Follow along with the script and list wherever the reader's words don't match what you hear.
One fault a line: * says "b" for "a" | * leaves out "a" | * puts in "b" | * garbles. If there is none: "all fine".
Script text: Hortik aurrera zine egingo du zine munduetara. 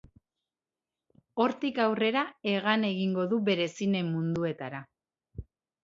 * says "hegan" for "zine"
* puts in "bere"